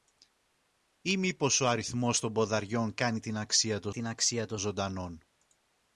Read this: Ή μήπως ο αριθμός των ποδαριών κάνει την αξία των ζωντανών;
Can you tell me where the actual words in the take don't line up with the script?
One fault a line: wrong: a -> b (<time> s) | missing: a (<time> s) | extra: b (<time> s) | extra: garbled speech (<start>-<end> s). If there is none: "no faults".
extra: την αξία των (3.9 s)